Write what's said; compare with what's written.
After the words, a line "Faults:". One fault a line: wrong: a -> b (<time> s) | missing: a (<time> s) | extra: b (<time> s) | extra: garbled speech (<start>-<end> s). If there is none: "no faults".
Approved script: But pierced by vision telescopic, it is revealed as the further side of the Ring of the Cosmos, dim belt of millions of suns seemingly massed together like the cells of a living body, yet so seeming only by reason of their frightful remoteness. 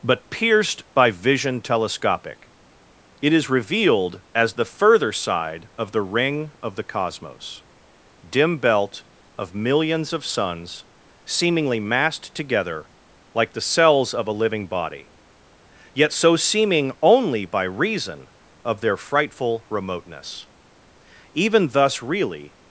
But pierced by vision telescopic, it is revealed as the further side of the Ring of the Cosmos, dim belt of millions of suns seemingly massed together like the cells of a living body, yet so seeming only by reason of their frightful remoteness. Even thus really
Faults:
extra: Even thus really (21.4 s)